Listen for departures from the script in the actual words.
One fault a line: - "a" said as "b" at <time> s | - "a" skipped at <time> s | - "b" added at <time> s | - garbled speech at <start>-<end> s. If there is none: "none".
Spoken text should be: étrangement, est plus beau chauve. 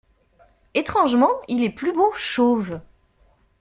- "il" added at 1.5 s